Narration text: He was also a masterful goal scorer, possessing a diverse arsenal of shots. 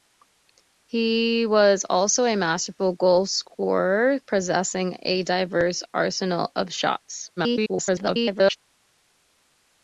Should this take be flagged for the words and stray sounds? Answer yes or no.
yes